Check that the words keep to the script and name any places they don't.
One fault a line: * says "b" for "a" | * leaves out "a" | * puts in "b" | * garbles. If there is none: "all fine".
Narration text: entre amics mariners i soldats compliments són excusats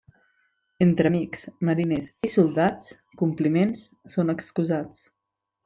all fine